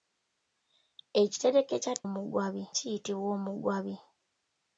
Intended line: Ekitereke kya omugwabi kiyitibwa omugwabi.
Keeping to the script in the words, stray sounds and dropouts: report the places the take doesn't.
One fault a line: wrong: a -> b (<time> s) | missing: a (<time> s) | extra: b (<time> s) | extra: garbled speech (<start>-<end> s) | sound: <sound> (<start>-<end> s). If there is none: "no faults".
no faults